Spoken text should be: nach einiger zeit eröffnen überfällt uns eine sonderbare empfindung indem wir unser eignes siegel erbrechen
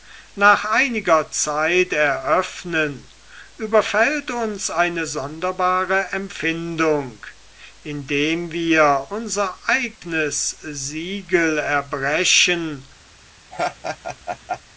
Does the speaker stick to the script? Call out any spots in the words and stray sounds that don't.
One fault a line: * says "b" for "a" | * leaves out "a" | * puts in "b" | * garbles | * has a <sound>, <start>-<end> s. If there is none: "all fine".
* has a dropout, 10.0-10.0 s
* has a laugh, 13.5-14.6 s